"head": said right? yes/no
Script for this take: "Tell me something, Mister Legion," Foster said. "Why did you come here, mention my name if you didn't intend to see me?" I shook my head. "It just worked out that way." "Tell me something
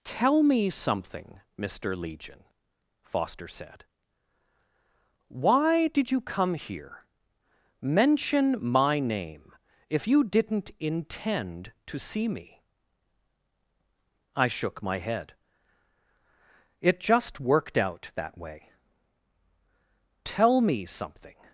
yes